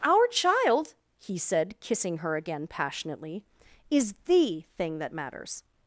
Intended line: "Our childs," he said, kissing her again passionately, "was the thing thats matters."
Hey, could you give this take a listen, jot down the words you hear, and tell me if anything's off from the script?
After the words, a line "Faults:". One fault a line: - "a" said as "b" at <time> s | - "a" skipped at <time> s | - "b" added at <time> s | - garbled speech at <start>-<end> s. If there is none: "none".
"Our child," he said, kissing her again passionately, "is the thing that matters."
Faults:
- "childs" said as "child" at 0.2 s
- "was" said as "is" at 3.9 s
- "thats" said as "that" at 5.0 s